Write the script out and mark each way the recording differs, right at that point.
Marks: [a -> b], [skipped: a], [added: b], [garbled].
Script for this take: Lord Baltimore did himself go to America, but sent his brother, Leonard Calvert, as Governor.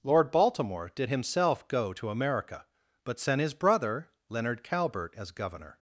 Lord Baltimore did himself go to America, but sent his brother, Leonard Calvert, as Governor.